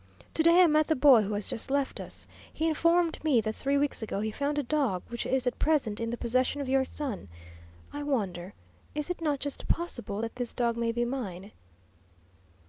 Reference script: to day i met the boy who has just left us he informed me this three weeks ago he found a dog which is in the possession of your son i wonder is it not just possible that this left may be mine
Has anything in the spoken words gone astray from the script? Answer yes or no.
yes